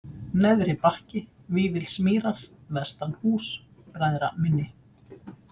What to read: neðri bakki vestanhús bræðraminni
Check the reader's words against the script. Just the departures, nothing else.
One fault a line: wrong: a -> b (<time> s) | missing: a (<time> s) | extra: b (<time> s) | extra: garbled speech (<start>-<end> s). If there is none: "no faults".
extra: vífilsmýrar (1.6 s)